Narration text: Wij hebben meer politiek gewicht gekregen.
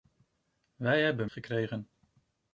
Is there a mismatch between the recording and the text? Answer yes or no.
yes